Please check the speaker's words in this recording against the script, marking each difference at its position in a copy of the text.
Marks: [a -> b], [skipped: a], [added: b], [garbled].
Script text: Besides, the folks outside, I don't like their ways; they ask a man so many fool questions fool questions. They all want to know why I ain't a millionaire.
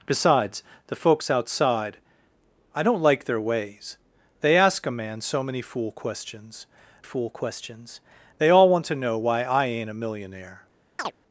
Besides, the folks outside, I don't like their ways; they ask a man so many fool questions fool questions. They all want to know why I ain't a millionaire.